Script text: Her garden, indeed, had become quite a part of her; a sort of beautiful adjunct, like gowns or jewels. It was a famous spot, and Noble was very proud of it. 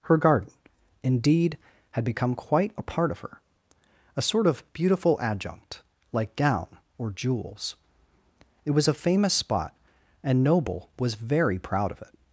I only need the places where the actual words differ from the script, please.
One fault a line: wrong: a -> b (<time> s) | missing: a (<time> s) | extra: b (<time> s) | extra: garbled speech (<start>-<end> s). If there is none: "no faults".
wrong: gowns -> gown (6.3 s)